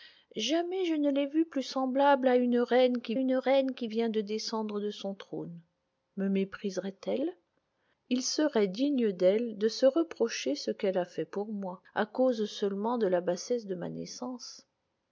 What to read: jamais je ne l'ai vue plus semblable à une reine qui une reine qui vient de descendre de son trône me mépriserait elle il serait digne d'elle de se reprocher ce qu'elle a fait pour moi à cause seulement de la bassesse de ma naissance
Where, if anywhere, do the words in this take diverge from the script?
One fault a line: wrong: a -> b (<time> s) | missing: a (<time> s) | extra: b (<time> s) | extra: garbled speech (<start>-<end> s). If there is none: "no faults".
no faults